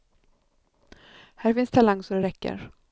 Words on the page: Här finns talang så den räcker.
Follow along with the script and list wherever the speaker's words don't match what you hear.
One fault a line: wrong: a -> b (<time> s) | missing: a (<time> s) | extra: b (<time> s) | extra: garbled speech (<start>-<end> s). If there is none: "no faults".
wrong: den -> det (2.1 s)